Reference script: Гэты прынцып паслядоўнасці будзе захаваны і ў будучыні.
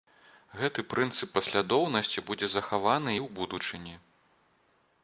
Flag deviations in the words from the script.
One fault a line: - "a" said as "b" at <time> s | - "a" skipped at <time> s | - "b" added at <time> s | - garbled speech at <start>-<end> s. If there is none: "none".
none